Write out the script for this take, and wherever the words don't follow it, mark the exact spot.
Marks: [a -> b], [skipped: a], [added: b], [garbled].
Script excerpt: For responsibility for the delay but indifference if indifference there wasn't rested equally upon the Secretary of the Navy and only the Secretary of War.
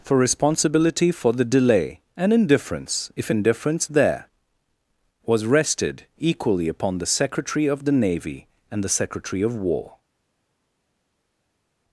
For responsibility for the delay [but -> and] indifference if indifference there [wasn't -> was] rested equally upon the Secretary of the Navy and [skipped: only] the Secretary of War.